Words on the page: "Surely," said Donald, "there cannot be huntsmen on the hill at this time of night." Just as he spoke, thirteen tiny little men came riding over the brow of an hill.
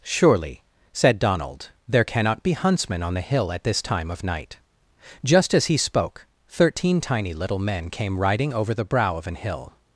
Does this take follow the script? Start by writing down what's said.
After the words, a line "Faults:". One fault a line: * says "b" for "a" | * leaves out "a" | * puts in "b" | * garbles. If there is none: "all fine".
"Surely," said Donald, "there cannot be huntsmen on the hill at this time of night." Just as he spoke, thirteen tiny little men came riding over the brow of an hill.
Faults:
all fine